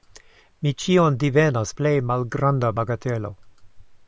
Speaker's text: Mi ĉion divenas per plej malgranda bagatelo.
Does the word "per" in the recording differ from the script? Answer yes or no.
yes